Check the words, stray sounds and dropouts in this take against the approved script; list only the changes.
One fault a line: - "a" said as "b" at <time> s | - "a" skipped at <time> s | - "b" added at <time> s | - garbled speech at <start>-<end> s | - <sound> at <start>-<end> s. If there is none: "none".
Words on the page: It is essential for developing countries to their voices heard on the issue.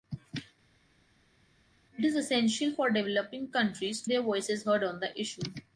none